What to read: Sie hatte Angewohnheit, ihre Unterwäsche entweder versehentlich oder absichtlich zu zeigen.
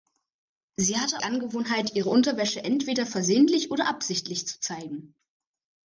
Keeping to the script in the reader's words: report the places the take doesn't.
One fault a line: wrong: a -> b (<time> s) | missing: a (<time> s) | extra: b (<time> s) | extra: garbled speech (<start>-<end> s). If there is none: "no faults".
no faults